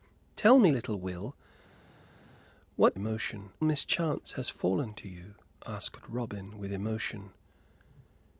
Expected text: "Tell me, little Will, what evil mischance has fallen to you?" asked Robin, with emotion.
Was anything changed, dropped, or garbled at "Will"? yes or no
no